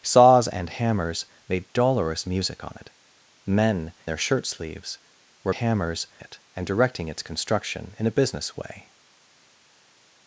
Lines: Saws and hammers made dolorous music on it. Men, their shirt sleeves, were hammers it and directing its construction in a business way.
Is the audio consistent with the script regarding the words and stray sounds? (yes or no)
yes